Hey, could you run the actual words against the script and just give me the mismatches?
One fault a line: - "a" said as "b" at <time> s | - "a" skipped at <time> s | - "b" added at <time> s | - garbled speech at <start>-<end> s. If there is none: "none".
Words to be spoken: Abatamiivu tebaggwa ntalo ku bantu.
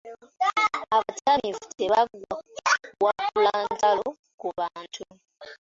- "kuwakula" added at 3.0 s